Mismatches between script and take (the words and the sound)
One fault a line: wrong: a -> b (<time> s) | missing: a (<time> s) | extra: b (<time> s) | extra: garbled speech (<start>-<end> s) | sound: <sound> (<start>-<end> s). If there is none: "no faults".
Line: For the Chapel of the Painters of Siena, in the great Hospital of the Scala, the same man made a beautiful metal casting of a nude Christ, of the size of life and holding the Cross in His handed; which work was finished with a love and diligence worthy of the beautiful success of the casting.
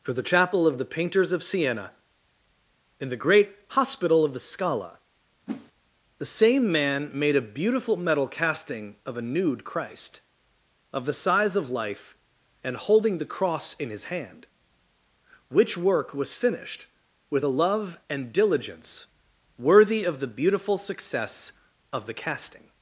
sound: whoosh (5.5-5.7 s)
wrong: handed -> hand (14.1 s)